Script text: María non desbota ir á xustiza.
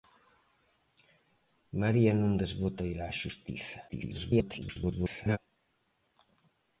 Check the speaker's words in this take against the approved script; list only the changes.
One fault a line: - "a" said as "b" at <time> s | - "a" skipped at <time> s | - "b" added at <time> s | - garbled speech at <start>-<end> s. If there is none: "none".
- garbled speech at 3.9-5.4 s